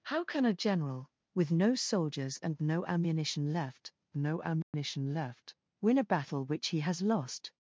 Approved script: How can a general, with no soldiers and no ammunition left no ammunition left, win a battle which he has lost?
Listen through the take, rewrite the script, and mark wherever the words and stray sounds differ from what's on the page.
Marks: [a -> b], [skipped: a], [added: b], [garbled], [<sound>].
How can a general, with no soldiers and no ammunition left no ammunition [dropout] left, win a battle which he has lost?